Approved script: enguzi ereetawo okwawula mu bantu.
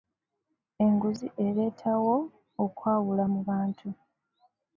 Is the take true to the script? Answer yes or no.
yes